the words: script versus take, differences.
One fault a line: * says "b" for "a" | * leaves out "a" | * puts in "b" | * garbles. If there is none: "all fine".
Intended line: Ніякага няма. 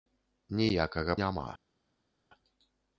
all fine